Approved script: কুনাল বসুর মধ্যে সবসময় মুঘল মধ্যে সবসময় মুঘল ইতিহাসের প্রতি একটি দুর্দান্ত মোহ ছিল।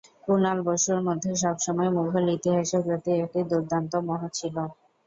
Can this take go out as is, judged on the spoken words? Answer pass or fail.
fail